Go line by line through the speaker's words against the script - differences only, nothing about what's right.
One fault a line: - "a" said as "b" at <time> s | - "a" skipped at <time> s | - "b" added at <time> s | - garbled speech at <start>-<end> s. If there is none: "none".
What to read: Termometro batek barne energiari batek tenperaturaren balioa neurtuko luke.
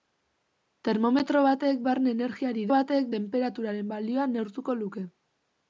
none